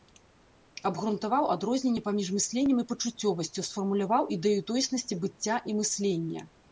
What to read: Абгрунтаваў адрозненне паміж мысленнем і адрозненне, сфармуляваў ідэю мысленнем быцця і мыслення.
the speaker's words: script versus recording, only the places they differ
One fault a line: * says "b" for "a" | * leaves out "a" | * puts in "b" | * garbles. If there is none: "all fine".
* says "пачуццёвасцю" for "адрозненне"
* says "тоеснасці" for "мысленнем"